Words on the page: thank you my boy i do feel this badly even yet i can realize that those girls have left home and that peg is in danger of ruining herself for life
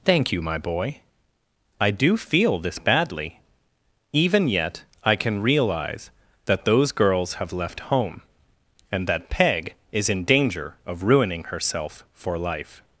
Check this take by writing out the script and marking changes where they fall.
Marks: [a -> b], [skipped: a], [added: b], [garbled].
thank you my boy i do feel this badly even yet i can realize that those girls have left home and that peg is in danger of ruining herself for life